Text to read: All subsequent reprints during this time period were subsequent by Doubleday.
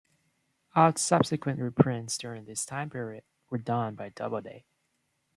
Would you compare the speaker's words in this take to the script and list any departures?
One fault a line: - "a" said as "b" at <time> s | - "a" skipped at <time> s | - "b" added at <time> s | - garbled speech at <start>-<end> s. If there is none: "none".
- "subsequent" said as "done" at 3.6 s